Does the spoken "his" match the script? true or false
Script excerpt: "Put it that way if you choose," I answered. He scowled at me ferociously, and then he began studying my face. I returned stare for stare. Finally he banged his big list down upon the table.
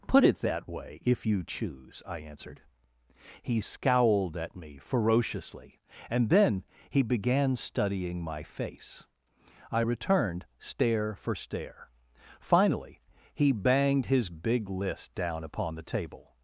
true